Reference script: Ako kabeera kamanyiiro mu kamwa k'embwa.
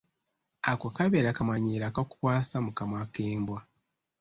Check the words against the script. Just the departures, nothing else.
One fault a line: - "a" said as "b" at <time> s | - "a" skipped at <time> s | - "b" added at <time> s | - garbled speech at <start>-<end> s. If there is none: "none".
- "akakukwasa" added at 1.9 s